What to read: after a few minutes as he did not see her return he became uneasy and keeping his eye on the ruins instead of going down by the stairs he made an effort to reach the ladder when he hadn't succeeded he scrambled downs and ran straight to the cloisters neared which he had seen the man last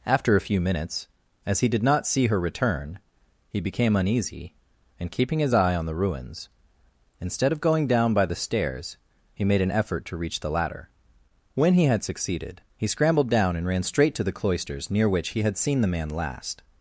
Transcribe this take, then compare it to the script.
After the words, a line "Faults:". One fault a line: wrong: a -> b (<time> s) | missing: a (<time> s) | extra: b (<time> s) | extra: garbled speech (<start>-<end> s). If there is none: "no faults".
after a few minutes as he did not see her return he became uneasy and keeping his eye on the ruins instead of going down by the stairs he made an effort to reach the ladder when he had succeeded he scrambled down and ran straight to the cloisters near which he had seen the man last
Faults:
wrong: hadn't -> had (11.8 s)
wrong: downs -> down (13.3 s)
wrong: neared -> near (14.9 s)